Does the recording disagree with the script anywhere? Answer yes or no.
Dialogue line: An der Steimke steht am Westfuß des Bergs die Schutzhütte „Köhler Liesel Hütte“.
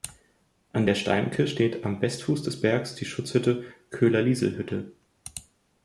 no